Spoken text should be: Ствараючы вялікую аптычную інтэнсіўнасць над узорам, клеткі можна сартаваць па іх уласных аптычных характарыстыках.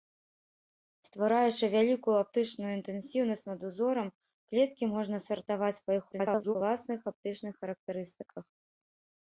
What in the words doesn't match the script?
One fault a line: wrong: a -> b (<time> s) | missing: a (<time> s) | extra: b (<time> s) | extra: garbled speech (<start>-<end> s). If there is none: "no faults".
extra: garbled speech (6.1-6.6 s)